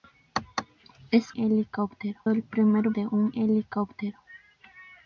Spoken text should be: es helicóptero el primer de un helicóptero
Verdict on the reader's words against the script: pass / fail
pass